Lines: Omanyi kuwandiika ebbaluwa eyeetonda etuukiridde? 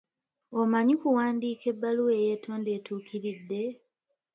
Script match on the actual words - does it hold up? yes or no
yes